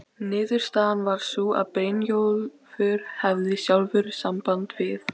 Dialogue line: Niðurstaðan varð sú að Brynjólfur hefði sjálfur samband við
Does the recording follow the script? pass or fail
pass